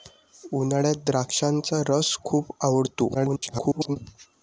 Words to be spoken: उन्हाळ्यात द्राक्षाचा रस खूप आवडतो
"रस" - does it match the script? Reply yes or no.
yes